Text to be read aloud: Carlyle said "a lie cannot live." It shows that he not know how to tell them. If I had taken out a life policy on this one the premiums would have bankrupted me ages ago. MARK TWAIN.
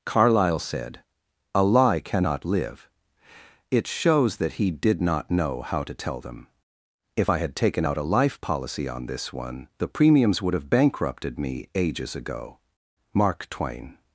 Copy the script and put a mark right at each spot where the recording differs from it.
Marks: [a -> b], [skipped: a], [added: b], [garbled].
Carlyle said "a lie cannot live." It shows that he [added: did] not know how to tell them. If I had taken out a life policy on this one the premiums would have bankrupted me ages ago. MARK TWAIN.